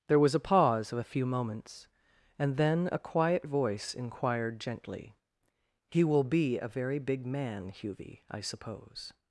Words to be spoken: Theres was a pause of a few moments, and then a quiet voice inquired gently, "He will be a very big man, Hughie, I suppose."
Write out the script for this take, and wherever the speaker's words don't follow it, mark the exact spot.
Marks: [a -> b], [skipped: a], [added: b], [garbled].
[Theres -> There] was a pause of a few moments, and then a quiet voice inquired gently, "He will be a very big man, Hughie, I suppose."